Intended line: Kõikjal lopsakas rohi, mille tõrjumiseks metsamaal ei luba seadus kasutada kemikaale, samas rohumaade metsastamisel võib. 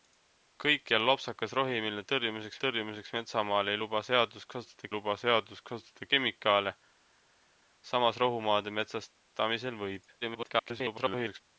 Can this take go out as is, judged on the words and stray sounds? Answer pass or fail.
fail